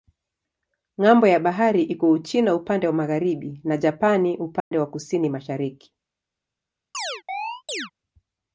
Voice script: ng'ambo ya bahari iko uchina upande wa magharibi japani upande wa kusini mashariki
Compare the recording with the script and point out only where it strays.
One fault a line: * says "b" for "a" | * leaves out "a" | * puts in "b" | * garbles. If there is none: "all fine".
* puts in "na"